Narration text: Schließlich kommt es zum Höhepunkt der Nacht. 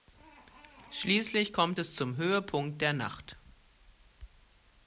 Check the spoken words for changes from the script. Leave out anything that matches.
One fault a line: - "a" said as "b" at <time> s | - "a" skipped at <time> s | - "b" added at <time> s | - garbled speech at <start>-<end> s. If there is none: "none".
none